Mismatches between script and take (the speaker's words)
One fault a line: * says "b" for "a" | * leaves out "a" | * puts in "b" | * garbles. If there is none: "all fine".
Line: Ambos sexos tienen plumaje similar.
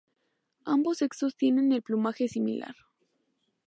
* puts in "el"